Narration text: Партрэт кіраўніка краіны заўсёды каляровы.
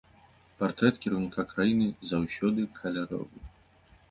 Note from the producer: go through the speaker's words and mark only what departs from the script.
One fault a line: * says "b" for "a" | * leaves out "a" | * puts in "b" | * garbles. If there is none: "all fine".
all fine